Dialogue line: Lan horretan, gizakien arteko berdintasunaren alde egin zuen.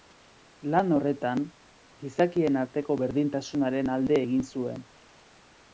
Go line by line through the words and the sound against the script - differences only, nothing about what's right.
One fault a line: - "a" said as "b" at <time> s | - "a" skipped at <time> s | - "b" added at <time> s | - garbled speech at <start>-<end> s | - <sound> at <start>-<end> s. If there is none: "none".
none